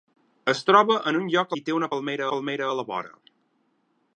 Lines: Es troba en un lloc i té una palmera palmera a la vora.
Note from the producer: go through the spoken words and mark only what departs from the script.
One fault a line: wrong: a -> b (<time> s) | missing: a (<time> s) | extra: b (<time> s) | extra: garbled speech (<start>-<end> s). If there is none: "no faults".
no faults